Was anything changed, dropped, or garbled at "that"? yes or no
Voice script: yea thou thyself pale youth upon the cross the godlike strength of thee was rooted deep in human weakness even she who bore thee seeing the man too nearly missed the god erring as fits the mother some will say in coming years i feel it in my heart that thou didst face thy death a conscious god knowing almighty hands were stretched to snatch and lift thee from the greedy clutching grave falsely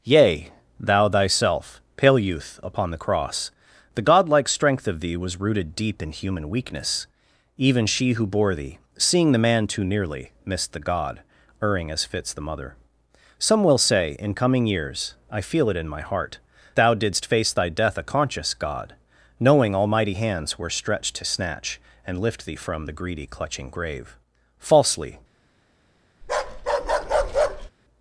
yes